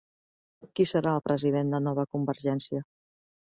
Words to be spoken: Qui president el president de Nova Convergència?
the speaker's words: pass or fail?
fail